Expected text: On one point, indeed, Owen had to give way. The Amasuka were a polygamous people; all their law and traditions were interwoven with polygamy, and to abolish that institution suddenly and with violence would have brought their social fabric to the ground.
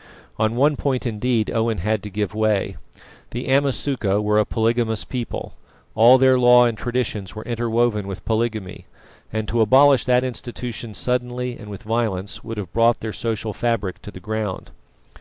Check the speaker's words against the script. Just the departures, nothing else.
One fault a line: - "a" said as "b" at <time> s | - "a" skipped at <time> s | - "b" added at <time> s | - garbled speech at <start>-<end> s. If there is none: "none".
none